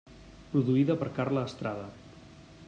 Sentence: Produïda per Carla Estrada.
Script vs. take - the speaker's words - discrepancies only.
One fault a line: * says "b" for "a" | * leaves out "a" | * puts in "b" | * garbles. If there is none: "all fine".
all fine